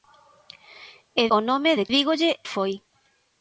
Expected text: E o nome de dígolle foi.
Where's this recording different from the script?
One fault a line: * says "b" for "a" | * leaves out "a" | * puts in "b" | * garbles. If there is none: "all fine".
all fine